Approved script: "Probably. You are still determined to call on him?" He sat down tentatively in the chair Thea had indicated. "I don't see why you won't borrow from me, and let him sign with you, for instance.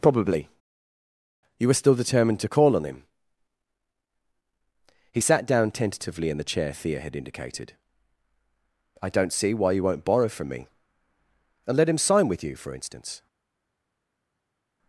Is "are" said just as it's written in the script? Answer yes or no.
no